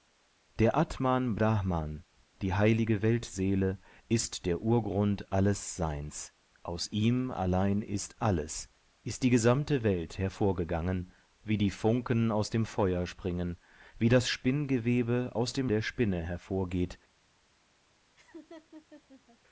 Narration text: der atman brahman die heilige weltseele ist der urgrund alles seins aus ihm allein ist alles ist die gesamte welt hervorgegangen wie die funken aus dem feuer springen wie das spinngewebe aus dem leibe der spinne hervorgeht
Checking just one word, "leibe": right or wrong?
wrong